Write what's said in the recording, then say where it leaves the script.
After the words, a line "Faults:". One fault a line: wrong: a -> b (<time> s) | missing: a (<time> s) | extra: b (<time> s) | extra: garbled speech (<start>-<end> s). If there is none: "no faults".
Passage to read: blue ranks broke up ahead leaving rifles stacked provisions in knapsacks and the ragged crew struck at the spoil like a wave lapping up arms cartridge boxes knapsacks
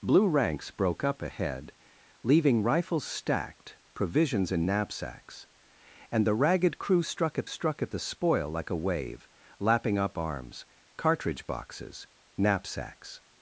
blue ranks broke up ahead leaving rifles stacked provisions in knapsacks and the ragged crew struck at struck at the spoil like a wave lapping up arms cartridge boxes knapsacks
Faults:
extra: struck at (7.4 s)